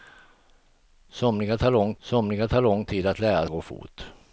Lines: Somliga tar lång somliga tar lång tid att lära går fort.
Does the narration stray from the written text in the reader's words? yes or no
no